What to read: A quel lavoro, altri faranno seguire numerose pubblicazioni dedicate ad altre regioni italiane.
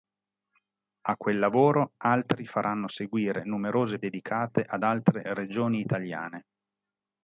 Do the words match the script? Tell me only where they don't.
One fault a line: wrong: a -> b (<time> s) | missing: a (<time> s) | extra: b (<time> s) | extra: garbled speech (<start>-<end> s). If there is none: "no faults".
missing: pubblicazioni (4.0 s)